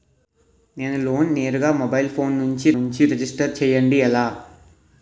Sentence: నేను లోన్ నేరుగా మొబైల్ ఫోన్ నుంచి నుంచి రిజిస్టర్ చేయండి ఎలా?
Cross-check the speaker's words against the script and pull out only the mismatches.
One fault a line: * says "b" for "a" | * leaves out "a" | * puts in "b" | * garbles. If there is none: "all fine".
all fine